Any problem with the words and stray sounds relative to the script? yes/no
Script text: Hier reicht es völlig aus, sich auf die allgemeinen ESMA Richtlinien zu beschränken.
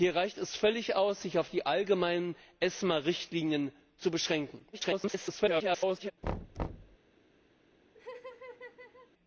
yes